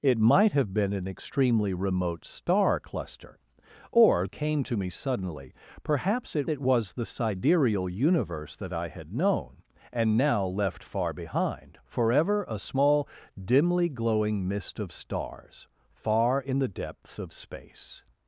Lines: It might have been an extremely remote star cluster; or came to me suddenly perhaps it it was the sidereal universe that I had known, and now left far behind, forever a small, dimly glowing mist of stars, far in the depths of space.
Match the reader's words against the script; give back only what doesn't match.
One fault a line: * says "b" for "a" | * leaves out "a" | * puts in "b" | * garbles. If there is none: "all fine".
all fine